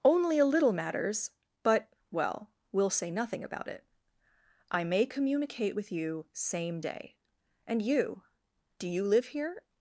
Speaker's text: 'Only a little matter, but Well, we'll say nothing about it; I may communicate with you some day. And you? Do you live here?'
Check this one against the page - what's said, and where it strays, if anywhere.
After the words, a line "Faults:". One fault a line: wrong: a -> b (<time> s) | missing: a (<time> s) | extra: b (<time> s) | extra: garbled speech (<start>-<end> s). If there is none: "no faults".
'Only a little matters, but Well, we'll say nothing about it; I may communicate with you same day. And you? Do you live here?'
Faults:
wrong: matter -> matters (0.7 s)
wrong: some -> same (6.3 s)